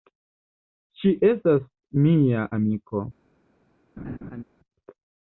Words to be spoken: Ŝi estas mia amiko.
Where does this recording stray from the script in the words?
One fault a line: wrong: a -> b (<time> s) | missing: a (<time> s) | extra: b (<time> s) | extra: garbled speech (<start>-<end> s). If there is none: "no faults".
no faults